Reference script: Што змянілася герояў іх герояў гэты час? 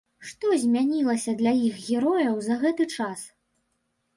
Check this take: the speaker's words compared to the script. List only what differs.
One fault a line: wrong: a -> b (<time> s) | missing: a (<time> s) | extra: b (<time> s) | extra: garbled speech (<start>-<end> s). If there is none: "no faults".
wrong: герояў -> для (1.4 s)
extra: за (2.5 s)